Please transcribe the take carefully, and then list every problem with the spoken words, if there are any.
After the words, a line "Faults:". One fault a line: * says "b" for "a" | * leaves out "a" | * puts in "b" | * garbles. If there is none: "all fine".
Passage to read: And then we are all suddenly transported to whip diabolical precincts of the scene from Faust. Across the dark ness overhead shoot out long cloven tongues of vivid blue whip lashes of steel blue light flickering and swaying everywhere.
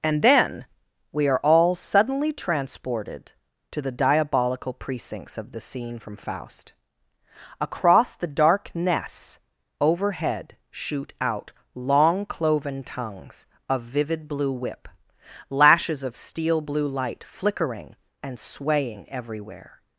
And then we are all suddenly transported to the diabolical precincts of the scene from Faust. Across the dark ness overhead shoot out long cloven tongues of vivid blue whip lashes of steel blue light flickering and swaying everywhere.
Faults:
* says "the" for "whip"